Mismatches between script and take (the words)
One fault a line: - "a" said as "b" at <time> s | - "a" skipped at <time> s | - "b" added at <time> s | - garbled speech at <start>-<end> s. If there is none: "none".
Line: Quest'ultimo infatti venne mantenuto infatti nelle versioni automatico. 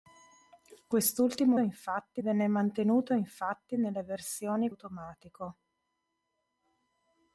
none